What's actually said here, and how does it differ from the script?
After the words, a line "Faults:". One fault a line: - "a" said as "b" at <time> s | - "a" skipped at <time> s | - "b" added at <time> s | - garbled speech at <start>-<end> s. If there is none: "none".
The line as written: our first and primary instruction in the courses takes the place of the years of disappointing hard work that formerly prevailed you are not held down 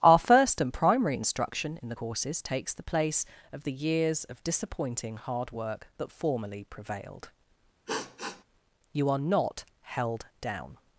our first and primary instruction in the courses takes the place of the years of disappointing hard work that formerly prevailed you are not held down
Faults:
none